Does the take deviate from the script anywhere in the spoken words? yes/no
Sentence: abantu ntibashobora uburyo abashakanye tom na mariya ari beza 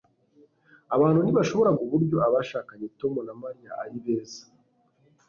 no